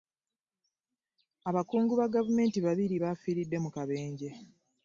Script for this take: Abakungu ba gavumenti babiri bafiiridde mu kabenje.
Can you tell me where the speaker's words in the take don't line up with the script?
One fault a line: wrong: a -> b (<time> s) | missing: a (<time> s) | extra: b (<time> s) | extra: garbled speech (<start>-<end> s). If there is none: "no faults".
no faults